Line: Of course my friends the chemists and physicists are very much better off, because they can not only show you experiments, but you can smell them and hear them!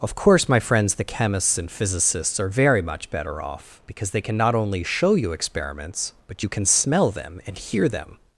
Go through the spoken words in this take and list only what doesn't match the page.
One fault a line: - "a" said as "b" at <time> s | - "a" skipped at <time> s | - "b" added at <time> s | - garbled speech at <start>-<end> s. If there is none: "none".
none